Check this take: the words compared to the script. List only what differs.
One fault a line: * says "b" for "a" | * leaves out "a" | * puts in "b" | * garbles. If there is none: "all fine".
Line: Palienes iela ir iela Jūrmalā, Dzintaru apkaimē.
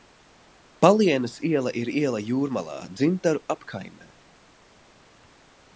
all fine